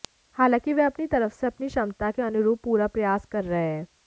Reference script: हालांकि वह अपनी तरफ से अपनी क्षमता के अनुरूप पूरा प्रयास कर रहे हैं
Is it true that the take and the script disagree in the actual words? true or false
false